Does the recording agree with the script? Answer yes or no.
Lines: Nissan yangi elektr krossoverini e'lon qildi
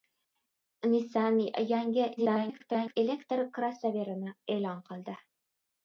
no